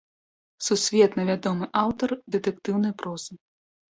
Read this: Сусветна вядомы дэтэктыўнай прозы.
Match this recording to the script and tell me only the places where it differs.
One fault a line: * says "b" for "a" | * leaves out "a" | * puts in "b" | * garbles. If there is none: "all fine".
* puts in "аўтар"